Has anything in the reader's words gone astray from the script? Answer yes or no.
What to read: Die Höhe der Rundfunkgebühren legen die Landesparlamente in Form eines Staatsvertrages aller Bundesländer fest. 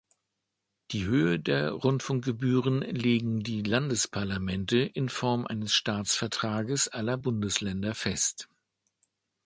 no